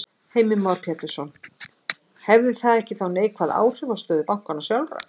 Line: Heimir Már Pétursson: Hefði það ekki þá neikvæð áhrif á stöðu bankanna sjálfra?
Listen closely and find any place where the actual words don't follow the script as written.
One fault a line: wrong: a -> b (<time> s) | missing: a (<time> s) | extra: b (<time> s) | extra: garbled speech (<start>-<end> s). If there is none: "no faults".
no faults